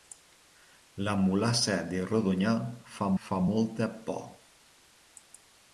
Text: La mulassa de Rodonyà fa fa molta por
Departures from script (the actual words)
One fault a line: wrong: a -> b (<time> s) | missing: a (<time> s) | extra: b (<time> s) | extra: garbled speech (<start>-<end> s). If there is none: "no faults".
no faults